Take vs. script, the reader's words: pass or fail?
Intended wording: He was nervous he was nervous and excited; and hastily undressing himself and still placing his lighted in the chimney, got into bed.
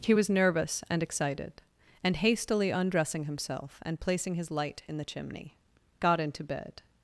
fail